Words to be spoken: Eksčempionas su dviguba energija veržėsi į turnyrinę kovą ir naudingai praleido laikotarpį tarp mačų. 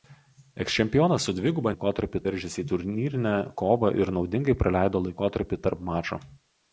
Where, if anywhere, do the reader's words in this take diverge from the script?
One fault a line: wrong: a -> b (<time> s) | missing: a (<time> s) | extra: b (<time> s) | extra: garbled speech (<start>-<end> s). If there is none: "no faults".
wrong: energija -> laikotarpį (1.7 s)